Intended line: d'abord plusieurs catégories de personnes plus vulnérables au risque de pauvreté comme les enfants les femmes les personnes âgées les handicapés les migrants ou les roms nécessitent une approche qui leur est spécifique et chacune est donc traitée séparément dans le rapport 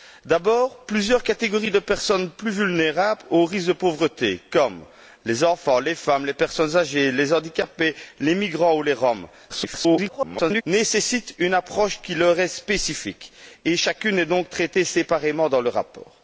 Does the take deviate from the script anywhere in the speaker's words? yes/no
yes